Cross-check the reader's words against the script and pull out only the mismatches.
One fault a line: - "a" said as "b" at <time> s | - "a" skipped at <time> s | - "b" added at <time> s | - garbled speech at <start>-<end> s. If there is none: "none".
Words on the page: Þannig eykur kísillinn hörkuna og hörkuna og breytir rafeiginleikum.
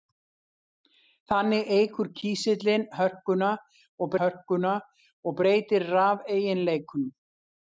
none